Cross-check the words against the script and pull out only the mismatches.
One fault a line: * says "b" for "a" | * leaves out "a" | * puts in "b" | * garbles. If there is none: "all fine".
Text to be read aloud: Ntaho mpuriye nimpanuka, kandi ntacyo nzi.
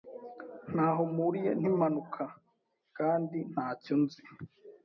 all fine